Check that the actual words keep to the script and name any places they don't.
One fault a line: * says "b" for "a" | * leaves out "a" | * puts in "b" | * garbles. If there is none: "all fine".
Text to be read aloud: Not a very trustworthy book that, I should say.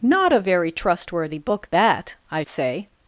* leaves out "should"